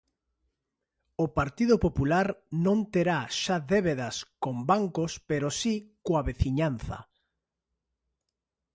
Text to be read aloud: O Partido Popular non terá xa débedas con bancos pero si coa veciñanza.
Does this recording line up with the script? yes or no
yes